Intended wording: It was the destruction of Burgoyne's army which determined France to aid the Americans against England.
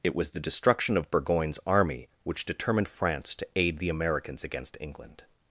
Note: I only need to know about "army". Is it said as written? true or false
true